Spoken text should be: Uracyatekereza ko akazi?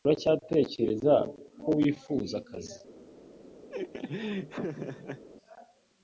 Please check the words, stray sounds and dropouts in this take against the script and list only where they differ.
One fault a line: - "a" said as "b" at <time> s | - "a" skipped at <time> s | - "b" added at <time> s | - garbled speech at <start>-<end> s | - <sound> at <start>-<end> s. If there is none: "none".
- "wifuza" added at 1.8 s
- laugh at 3.7-5.2 s